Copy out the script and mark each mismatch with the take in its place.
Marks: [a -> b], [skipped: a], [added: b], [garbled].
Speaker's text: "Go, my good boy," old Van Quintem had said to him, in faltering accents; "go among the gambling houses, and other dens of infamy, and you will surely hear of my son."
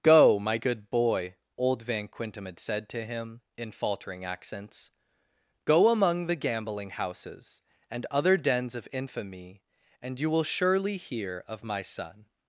"Go, my good boy," old Van Quintem had said to him, in faltering accents; "go among the gambling houses, and other dens of infamy, and you will surely hear of my son."